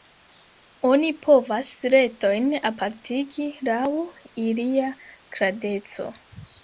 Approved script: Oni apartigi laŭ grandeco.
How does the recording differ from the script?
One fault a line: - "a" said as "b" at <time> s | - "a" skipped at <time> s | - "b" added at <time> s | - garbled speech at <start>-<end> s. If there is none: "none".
- "povas retojn" added at 1.2 s
- "ilia" added at 4.5 s